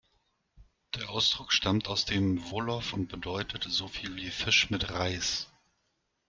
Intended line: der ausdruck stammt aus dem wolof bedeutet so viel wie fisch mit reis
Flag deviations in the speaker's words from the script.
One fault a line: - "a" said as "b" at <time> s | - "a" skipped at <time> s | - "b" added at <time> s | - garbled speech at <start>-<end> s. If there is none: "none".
- "und" added at 2.9 s